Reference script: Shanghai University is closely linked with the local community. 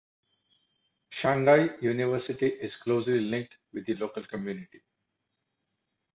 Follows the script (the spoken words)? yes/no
yes